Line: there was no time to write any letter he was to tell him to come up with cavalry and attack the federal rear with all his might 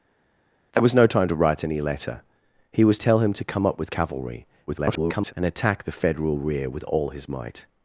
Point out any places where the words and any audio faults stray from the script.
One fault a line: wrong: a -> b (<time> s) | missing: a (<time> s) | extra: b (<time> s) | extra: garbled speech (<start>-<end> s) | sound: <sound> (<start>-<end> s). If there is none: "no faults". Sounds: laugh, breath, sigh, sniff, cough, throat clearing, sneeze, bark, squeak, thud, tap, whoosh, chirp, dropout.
missing: to (3.0 s)
extra: garbled speech (4.7-5.3 s)